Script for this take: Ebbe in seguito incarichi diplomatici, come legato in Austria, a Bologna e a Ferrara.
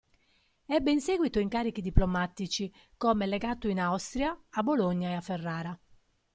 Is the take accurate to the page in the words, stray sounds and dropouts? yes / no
yes